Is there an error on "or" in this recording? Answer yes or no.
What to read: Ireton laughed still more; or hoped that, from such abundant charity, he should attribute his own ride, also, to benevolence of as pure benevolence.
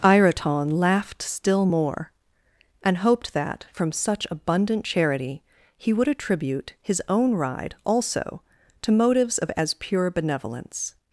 yes